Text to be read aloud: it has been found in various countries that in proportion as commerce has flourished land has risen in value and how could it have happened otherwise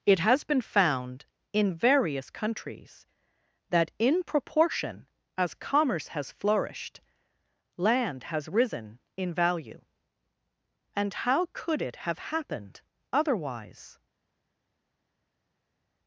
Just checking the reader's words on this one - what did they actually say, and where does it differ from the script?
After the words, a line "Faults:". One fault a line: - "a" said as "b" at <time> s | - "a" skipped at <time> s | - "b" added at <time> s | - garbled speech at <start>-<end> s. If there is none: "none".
it has been found in various countries that in proportion as commerce has flourished land has risen in value and how could it have happened otherwise
Faults:
none